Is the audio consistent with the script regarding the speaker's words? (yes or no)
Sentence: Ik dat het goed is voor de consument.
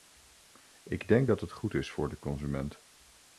no